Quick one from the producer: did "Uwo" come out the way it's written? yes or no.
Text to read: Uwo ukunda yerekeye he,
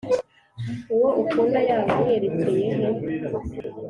yes